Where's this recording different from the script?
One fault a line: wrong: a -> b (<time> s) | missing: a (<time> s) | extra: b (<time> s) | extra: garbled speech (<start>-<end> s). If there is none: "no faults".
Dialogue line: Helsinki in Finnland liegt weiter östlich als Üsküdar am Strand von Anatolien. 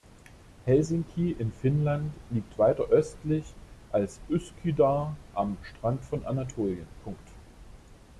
no faults